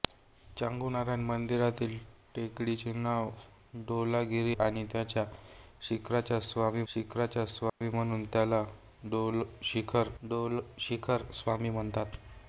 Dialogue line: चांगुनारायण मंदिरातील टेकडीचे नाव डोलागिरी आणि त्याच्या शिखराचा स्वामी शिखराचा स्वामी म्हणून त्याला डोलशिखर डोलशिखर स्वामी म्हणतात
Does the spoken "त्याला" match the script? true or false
true